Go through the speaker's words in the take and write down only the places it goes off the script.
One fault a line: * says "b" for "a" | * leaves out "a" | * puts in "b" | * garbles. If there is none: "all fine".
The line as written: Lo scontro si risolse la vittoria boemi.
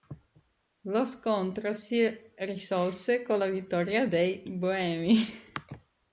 * puts in "con"
* puts in "dei"